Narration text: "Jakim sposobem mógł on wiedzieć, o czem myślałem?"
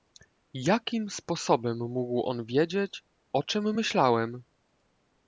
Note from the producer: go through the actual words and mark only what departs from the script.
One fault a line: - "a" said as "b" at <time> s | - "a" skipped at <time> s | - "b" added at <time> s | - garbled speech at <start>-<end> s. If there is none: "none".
none